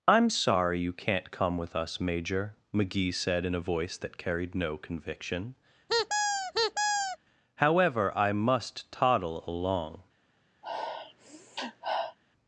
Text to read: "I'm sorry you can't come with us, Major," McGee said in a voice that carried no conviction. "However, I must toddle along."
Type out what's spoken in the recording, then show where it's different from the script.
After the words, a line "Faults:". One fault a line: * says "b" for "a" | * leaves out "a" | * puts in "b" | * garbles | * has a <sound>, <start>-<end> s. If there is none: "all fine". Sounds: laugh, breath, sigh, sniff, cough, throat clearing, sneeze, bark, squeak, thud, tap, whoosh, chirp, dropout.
"I'm sorry you can't come with us, Major," McGee said in a voice that carried no conviction. "However, I must toddle along."
Faults:
* has a squeak, 5.9-7.2 s
* has a sniff, 10.6-12.2 s